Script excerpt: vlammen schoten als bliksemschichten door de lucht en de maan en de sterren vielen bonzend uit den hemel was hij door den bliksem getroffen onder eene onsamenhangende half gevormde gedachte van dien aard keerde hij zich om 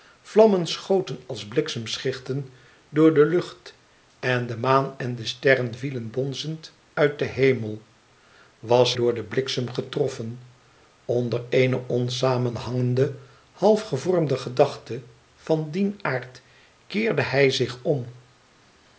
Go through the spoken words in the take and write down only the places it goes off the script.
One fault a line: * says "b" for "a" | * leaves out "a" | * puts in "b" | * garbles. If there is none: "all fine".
* leaves out "hij"